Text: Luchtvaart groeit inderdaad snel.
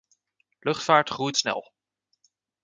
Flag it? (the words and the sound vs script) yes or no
yes